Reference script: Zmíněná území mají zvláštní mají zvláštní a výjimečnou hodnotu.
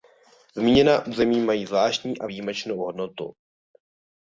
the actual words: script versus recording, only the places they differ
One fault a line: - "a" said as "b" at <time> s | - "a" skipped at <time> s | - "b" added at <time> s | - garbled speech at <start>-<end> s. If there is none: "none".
- "mají zvláštní" skipped at 2.2 s